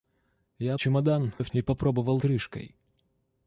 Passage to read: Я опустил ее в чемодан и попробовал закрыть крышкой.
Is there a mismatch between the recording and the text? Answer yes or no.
yes